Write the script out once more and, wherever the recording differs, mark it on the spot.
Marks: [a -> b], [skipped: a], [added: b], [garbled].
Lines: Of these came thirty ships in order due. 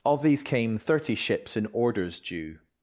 Of these came thirty ships in [order -> orders] due.